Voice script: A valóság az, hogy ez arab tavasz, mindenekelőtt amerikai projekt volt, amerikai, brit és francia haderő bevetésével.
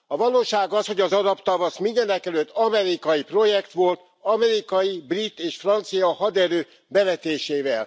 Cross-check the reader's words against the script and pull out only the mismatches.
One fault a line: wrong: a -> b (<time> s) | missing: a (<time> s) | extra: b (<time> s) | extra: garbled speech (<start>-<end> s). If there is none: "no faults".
wrong: ez -> az (1.0 s)